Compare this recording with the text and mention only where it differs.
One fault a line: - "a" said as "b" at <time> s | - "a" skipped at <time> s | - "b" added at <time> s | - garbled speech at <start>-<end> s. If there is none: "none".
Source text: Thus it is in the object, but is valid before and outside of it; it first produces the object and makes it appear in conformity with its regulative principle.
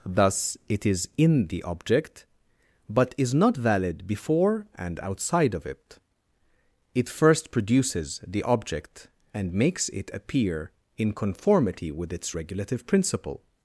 - "not" added at 3.3 s